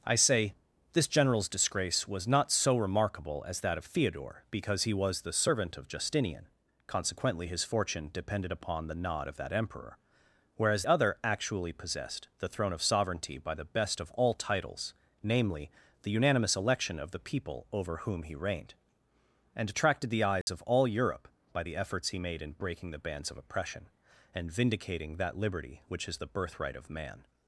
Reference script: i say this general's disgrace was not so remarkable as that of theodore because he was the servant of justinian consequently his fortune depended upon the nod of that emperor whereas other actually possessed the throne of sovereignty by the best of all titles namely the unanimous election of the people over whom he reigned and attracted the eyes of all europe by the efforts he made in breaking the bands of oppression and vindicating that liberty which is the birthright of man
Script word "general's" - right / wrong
right